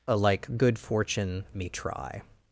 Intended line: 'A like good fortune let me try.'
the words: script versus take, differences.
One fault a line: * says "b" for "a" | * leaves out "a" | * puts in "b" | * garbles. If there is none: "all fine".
* leaves out "let"